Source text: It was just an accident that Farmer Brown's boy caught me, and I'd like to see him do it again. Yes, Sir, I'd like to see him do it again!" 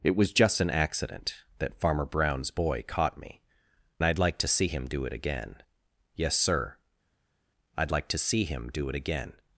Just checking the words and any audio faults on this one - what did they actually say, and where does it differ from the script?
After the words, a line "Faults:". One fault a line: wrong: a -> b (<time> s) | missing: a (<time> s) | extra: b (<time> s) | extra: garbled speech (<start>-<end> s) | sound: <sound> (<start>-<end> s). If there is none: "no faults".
It was just an accident that Farmer Brown's boy caught me, I'd like to see him do it again. Yes, Sir, I'd like to see him do it again!"
Faults:
missing: and (3.4 s)